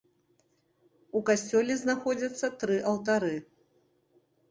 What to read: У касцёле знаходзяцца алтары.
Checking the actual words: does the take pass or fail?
fail